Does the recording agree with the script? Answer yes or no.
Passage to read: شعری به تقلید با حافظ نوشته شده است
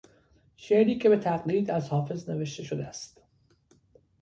no